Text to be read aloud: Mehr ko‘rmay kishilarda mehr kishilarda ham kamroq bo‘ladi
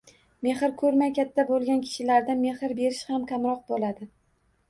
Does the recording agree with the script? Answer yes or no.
no